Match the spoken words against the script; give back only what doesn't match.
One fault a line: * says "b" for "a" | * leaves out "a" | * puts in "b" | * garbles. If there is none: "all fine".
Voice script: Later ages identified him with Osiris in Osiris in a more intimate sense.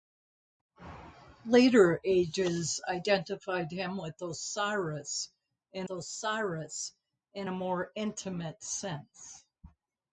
all fine